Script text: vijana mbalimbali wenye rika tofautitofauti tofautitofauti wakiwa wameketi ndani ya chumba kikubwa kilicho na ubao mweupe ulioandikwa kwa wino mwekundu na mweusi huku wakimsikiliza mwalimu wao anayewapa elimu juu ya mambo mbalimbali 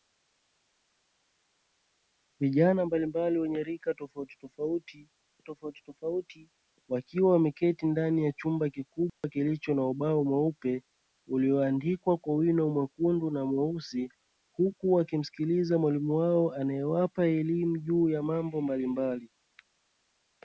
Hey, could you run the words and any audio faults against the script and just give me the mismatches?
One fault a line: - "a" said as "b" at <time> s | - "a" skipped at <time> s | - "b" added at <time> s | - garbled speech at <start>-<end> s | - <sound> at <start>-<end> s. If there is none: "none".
- dropout at 9.1-9.2 s